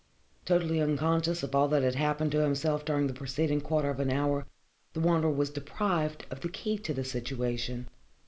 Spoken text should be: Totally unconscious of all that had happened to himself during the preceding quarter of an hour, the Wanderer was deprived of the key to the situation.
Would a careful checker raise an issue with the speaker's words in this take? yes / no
no